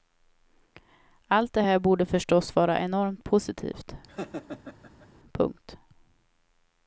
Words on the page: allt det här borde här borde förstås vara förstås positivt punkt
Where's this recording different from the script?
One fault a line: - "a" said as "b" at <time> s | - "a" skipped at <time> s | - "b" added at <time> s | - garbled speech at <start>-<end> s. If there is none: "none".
- "här borde" skipped at 2.1 s
- "förstås" said as "enormt" at 2.8 s